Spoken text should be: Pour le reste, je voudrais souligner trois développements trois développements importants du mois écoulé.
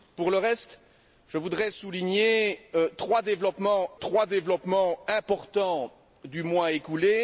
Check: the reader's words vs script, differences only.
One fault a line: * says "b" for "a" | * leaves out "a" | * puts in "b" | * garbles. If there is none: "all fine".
all fine